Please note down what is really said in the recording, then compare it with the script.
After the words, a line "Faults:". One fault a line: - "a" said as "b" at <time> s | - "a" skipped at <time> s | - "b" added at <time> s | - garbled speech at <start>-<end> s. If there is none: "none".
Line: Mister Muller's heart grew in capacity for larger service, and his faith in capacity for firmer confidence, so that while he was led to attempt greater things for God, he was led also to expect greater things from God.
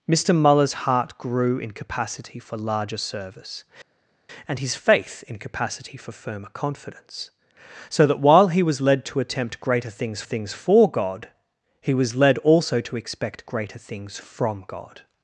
Mister Muller's heart grew in capacity for larger service, and his faith in capacity for firmer confidence, so that while he was led to attempt greater things things for God, he was led also to expect greater things from God.
Faults:
- "things" added at 10.2 s